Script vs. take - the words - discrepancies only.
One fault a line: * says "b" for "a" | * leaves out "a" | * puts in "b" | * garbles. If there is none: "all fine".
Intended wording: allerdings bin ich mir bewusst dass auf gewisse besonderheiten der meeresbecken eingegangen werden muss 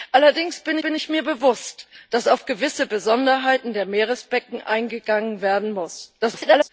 * puts in "bin"
* garbles